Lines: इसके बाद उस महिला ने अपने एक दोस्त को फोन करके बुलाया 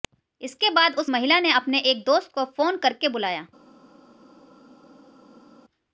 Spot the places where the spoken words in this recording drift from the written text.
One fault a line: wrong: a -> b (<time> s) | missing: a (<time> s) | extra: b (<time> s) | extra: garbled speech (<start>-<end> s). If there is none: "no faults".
no faults